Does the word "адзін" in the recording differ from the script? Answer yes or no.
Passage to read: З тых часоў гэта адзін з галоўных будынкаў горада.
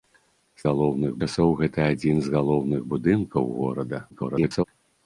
no